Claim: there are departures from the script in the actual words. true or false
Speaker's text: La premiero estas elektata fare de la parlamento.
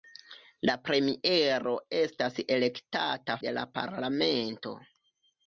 true